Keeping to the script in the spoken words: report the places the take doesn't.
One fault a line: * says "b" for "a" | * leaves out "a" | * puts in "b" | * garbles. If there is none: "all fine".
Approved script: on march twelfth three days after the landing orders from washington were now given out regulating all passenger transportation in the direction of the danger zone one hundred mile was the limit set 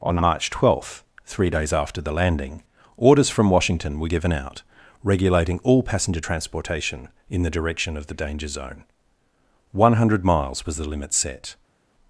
* leaves out "now"
* says "miles" for "mile"